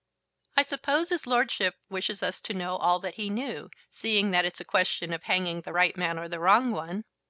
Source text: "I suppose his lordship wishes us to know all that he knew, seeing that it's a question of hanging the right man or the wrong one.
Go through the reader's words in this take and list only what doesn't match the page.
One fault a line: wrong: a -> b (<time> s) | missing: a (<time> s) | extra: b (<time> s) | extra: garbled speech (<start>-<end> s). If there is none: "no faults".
no faults